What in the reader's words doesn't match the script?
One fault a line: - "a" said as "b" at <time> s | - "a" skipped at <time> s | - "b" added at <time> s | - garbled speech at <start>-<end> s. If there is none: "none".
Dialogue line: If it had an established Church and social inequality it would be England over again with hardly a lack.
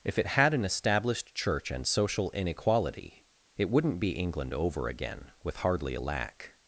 - "would" said as "wouldn't" at 3.7 s